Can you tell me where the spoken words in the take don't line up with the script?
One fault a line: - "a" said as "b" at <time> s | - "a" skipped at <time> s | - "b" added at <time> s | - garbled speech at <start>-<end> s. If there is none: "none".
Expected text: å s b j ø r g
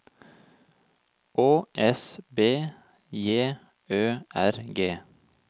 none